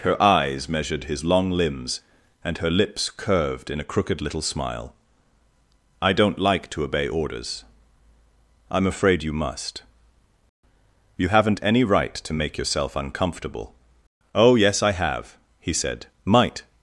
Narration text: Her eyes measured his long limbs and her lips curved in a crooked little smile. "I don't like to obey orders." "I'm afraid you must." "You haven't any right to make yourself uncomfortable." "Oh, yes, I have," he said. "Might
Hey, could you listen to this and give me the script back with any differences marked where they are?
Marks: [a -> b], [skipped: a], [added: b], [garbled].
Her eyes measured his long limbs and her lips curved in a crooked little smile. "I don't like to obey orders." "I'm afraid you must." "You haven't any right to make yourself uncomfortable." "Oh, yes, I have," he said. "Might